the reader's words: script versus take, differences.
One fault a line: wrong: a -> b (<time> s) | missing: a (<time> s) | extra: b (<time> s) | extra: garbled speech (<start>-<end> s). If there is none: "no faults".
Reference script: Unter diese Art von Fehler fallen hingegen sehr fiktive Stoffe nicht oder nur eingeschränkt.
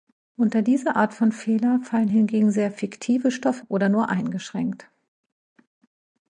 missing: nicht (3.7 s)